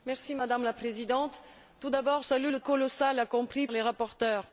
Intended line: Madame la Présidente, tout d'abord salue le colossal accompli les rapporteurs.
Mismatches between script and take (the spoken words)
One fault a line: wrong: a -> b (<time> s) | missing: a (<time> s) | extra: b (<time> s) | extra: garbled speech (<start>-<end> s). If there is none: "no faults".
no faults